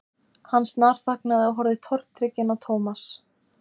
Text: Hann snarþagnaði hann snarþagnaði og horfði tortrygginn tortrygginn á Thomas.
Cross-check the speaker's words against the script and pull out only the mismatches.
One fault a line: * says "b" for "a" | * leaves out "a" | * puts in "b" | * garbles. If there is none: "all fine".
* leaves out "hann snarþagnaði"
* leaves out "tortrygginn"